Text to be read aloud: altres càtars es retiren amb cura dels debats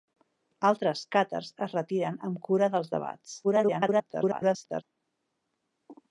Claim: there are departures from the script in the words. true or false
true